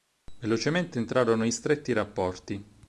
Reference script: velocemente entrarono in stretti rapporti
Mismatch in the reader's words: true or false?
false